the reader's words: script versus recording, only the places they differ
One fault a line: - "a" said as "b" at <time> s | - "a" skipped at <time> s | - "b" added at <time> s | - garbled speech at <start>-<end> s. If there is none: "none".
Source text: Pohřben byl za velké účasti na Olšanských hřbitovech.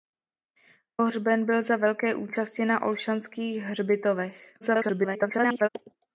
- garbled speech at 4.6-5.7 s